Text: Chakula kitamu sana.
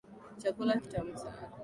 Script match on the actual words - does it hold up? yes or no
yes